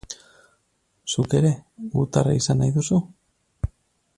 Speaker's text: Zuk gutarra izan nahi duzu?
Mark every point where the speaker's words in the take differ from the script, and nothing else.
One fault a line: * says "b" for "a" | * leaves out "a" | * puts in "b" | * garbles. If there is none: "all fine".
* puts in "ere"